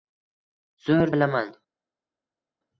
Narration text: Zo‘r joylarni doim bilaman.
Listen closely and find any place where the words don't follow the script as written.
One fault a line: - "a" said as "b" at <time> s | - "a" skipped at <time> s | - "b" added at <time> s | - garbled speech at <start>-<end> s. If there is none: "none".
- "joylarni doim" skipped at 1.1 s